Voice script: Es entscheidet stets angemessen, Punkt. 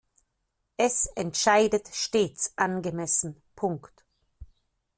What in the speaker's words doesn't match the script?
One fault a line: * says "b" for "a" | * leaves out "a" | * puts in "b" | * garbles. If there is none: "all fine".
all fine